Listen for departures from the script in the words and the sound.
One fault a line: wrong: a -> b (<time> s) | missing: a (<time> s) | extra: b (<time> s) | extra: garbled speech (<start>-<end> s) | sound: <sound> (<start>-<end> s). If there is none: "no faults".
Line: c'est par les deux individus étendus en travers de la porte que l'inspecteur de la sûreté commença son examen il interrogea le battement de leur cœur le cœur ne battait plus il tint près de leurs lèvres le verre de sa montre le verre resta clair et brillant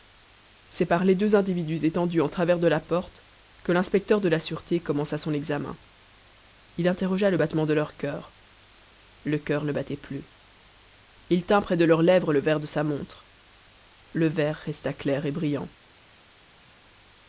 no faults